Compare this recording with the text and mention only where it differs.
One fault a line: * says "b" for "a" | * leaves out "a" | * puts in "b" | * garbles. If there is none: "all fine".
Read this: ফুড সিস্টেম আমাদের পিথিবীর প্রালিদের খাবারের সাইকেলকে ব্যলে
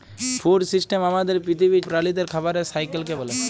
all fine